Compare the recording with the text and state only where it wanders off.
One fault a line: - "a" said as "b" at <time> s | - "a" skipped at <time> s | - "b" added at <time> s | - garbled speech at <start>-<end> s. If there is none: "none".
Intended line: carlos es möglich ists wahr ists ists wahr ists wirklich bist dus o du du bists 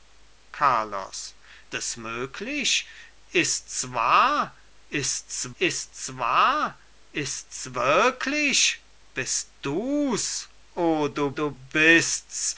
none